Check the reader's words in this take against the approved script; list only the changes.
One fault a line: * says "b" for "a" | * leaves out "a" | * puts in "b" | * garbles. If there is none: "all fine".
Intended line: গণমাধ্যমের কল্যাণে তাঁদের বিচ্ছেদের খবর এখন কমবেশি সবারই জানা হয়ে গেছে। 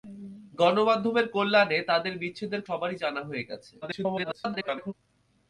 * leaves out "খবর এখন কমবেশি"
* garbles